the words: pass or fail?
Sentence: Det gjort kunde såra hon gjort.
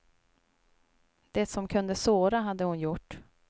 fail